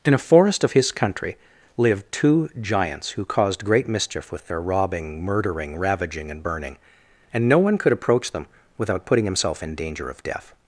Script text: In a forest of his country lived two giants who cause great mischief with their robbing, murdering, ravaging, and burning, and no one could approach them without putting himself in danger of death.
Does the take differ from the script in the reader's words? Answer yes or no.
yes